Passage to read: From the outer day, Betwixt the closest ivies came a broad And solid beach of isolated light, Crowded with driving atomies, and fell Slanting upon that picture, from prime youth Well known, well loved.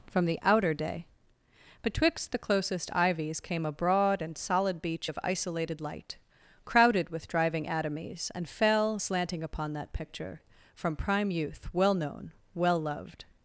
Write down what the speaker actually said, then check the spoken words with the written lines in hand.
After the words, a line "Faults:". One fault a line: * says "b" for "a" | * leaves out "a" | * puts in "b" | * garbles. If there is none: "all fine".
From the outer day, Betwixt the closest ivies came a broad And solid beach of isolated light, Crowded with driving atomies, and fell Slanting upon that picture, from prime youth Well known, well loved.
Faults:
all fine